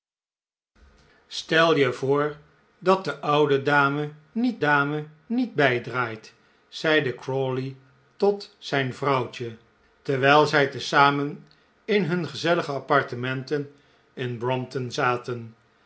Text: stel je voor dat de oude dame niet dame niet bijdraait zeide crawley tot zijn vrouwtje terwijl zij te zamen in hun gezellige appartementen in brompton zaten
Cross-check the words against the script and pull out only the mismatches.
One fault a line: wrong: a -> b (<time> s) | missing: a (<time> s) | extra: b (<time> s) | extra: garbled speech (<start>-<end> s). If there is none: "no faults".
no faults